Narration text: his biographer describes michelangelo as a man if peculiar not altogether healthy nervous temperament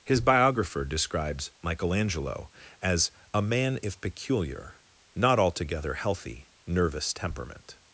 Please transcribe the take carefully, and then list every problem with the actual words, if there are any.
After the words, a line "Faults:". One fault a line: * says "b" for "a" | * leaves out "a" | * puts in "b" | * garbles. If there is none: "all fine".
his biographer describes michelangelo as a man if peculiar not altogether healthy nervous temperament
Faults:
all fine